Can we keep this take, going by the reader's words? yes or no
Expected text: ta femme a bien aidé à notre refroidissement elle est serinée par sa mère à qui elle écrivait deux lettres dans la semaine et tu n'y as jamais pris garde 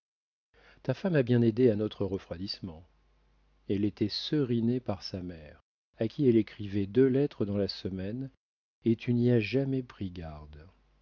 no